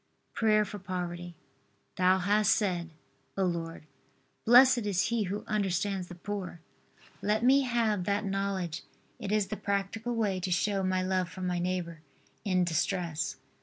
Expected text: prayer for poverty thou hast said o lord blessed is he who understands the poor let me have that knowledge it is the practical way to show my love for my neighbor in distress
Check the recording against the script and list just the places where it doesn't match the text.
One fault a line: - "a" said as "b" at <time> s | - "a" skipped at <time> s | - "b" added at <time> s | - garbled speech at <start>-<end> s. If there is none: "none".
none